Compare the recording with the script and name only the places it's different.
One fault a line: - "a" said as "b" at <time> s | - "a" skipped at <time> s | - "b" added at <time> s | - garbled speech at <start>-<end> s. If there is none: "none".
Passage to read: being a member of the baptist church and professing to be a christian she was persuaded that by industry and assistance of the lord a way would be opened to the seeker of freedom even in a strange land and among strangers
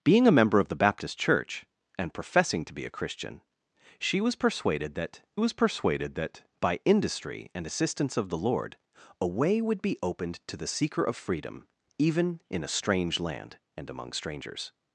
- "was persuaded that" added at 5.4 s